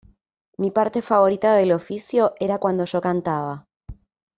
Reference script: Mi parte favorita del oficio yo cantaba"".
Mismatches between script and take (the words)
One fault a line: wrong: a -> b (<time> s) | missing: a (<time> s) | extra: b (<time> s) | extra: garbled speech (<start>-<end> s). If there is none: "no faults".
extra: era cuando (2.4 s)